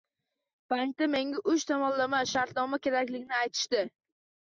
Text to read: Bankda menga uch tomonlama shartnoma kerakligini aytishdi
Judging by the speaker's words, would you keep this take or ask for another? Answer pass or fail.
pass